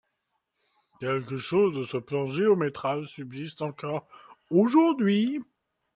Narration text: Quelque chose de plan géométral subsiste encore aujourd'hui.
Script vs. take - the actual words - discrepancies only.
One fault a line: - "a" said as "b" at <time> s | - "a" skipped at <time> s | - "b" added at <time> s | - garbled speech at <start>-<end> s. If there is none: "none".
- "ce" added at 1.8 s